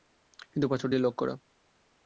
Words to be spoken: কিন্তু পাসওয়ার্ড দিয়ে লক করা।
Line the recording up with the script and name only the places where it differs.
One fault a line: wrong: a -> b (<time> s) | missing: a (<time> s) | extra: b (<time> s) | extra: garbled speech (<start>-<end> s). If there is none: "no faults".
no faults